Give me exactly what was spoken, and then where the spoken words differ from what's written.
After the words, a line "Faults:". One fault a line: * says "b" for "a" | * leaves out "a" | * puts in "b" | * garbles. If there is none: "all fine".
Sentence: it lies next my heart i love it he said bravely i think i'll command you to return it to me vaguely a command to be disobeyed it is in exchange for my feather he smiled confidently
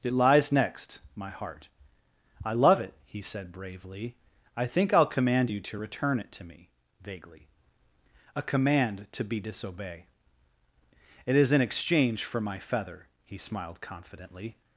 it lies next my heart i love it he said bravely i think i'll command you to return it to me vaguely a command to be disobey it is in exchange for my feather he smiled confidently
Faults:
* says "disobey" for "disobeyed"